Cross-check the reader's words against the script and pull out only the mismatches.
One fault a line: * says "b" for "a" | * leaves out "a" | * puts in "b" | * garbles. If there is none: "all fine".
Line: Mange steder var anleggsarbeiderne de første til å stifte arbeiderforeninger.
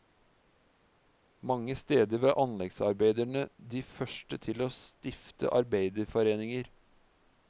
all fine